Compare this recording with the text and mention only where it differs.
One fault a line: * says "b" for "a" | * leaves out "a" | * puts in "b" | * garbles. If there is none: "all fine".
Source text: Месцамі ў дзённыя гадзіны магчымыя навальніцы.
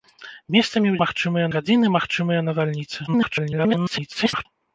* says "магчымыя" for "дзённыя"
* garbles